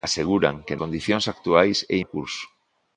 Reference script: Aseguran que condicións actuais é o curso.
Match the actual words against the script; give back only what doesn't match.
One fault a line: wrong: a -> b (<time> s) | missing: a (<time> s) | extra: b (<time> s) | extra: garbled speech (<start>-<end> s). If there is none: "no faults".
no faults